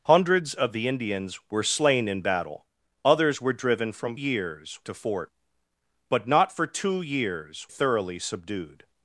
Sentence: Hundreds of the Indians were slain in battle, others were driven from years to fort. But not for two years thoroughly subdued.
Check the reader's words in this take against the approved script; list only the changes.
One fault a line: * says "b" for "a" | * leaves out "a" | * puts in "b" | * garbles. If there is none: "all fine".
all fine